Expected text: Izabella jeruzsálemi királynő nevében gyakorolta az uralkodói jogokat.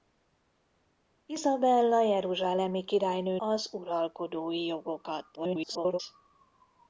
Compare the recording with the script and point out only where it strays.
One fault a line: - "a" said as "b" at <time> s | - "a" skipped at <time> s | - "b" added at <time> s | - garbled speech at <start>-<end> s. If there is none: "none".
- "nevében gyakorolta" skipped at 3.4 s
- garbled speech at 5.3-6.0 s